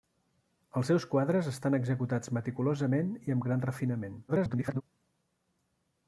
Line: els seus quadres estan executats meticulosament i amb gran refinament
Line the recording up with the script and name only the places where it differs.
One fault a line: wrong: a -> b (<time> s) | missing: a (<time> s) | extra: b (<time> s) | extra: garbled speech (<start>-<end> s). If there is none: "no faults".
extra: garbled speech (4.3-4.8 s)